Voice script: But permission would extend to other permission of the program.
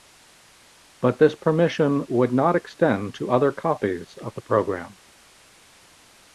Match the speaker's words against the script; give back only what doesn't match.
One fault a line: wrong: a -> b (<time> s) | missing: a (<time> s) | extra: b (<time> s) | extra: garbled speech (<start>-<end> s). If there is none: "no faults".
extra: this (1.2 s)
extra: not (2.3 s)
wrong: permission -> copies (3.5 s)